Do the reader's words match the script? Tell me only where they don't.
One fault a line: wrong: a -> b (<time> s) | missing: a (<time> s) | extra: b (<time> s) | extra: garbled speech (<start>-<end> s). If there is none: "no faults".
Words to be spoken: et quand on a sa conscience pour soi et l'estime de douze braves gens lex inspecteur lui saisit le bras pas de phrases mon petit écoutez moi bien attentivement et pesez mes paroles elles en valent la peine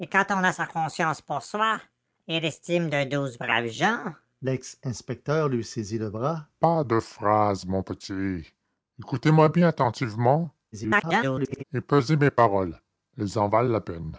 extra: garbled speech (10.7-11.6 s)